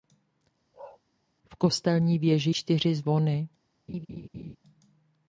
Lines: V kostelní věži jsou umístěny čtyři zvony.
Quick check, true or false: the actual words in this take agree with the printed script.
false